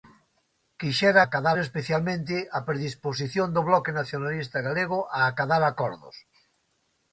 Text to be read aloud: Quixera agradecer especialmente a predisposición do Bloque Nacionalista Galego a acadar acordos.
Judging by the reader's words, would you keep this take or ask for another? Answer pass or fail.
fail